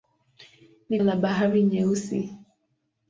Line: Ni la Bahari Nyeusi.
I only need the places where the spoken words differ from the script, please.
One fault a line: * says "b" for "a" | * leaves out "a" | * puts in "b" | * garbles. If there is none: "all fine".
all fine